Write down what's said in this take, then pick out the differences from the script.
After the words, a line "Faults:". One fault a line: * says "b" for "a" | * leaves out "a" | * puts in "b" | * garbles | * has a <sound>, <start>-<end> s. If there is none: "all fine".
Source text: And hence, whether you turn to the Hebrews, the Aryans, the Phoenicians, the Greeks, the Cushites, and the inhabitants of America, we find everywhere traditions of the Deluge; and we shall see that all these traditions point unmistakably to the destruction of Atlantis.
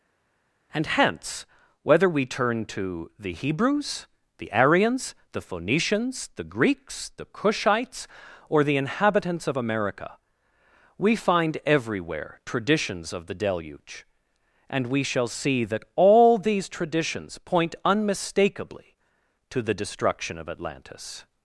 And hence, whether we turn to the Hebrews, the Aryans, the Phoenicians, the Greeks, the Cushites, or the inhabitants of America, we find everywhere traditions of the Deluge; and we shall see that all these traditions point unmistakably to the destruction of Atlantis.
Faults:
* says "we" for "you"
* says "or" for "and"